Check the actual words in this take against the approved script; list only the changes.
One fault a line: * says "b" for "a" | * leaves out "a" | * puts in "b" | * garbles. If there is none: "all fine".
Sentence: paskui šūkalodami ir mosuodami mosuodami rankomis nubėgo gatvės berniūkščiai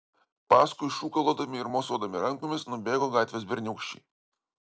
* leaves out "mosuodami"